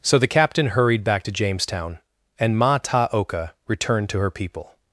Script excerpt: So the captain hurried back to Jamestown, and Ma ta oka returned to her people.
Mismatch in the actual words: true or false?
false